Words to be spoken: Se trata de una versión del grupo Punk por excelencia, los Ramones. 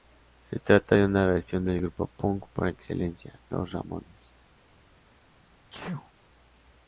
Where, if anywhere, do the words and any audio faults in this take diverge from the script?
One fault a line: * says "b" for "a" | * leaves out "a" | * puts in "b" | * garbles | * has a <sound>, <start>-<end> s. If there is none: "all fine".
* has a sneeze, 5.7-6.1 s